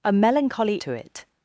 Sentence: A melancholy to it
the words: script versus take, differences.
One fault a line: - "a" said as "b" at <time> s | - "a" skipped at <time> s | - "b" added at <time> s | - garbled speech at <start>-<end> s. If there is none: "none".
none